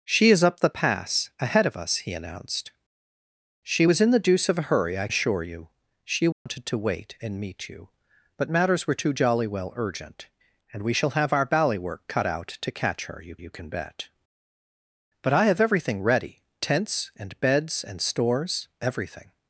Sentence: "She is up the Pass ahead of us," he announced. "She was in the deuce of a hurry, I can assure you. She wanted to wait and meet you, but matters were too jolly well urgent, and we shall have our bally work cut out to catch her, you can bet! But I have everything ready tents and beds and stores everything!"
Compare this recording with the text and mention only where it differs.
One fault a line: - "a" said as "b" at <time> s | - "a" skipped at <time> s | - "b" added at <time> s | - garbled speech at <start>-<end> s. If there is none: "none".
- "can" skipped at 5.1 s
- "you" added at 13.4 s